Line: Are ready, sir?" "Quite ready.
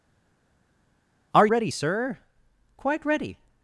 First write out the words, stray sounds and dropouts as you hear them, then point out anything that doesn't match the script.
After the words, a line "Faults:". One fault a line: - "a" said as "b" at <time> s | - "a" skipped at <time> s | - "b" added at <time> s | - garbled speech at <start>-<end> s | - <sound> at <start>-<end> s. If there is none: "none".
Are ready, sir?" "Quite ready.
Faults:
none